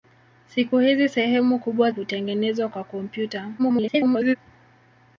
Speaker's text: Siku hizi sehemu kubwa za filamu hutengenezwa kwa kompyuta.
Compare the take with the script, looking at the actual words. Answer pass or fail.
fail